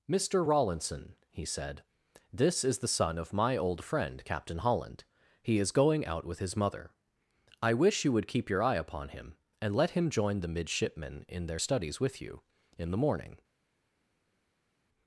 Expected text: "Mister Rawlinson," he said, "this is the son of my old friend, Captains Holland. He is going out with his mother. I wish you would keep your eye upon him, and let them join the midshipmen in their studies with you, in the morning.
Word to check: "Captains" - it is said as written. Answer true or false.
false